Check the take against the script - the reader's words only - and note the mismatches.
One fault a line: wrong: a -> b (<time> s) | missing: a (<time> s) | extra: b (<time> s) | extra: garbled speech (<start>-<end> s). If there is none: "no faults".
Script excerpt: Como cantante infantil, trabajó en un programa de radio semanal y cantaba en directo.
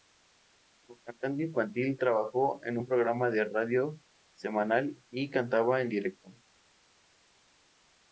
no faults